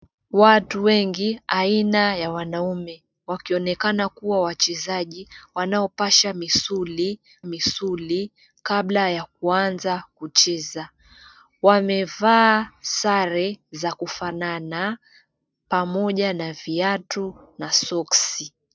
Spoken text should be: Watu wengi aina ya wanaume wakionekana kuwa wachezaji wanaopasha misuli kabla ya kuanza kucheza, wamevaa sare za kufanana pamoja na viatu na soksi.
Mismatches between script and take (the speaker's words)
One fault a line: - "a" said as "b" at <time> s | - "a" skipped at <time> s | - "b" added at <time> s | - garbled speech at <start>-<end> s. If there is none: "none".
- "misuli" added at 7.4 s